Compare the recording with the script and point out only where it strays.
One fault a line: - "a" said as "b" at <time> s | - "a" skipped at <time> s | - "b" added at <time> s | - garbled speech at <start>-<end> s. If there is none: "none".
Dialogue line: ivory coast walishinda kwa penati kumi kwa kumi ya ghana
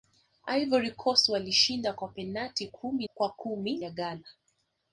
none